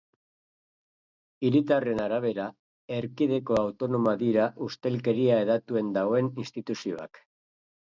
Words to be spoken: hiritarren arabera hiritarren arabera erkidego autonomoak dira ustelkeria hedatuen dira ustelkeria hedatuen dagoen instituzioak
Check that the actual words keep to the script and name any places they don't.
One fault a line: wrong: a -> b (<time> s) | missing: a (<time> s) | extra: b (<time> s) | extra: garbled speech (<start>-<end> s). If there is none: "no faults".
missing: hiritarren arabera (2.5 s)
missing: dira ustelkeria hedatuen (6.0 s)